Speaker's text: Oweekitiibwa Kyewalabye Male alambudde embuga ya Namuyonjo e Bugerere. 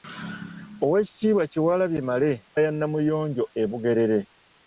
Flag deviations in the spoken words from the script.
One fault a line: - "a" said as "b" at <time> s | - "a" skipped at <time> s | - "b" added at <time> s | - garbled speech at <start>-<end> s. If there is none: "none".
- "alambudde embuga" skipped at 2.3 s